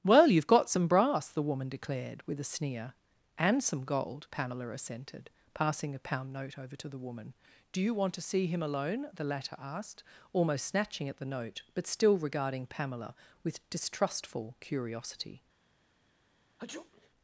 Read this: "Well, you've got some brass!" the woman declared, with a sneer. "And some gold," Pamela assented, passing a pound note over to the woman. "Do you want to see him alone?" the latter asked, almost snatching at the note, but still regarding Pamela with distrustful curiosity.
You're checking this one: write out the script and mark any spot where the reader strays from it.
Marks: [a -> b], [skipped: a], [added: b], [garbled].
"Well, you've got some brass!" the woman declared, with a sneer. "And some gold," Pamela assented, passing a pound note over to the woman. "Do you want to see him alone?" the latter asked, almost snatching at the note, but still regarding Pamela with distrustful curiosity.